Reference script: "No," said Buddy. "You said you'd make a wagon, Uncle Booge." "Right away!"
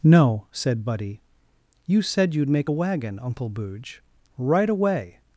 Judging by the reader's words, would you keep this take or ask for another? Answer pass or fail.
pass